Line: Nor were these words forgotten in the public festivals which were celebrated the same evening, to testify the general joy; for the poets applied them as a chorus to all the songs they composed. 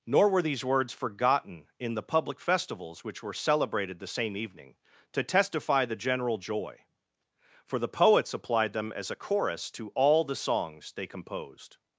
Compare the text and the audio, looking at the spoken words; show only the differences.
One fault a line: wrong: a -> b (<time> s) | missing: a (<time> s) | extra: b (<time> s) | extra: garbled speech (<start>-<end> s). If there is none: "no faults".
no faults